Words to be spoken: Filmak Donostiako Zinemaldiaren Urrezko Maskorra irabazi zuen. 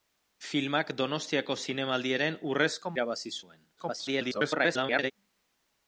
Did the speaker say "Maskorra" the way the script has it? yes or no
no